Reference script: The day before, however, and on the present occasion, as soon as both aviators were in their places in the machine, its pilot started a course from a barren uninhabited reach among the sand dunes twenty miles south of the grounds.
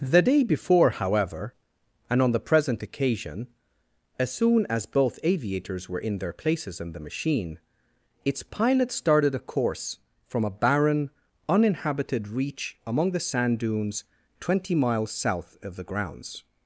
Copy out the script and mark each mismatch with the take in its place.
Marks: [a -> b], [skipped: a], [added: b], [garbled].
The day before, however, and on the present occasion, as soon as both aviators were in their places in the machine, its pilot started a course from a barren uninhabited reach among the sand dunes twenty miles south of the grounds.